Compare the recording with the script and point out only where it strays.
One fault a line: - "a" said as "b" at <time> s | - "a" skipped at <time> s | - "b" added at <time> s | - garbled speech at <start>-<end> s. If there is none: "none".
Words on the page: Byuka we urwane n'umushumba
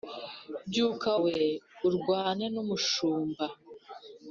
none